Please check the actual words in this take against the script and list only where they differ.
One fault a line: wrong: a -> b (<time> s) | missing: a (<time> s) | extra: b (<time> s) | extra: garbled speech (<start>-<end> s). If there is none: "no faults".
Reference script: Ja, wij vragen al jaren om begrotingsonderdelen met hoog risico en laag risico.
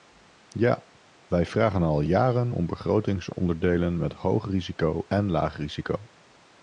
no faults